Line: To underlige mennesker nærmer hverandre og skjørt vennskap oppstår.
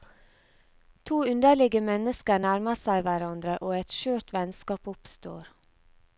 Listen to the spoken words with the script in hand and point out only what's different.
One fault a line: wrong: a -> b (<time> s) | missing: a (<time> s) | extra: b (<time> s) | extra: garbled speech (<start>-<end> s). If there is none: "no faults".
extra: seg (2.8 s)
extra: et (3.8 s)